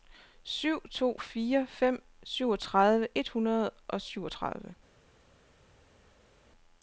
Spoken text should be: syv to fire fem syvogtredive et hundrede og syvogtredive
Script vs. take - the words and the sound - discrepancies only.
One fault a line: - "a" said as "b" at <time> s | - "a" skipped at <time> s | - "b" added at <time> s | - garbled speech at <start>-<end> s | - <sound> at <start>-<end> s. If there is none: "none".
none